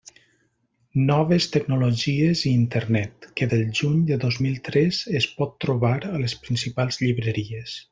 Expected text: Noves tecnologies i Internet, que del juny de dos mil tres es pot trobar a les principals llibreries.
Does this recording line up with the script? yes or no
yes